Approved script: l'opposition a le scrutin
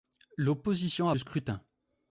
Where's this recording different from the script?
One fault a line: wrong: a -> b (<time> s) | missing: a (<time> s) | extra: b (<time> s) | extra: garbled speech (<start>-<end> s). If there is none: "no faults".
no faults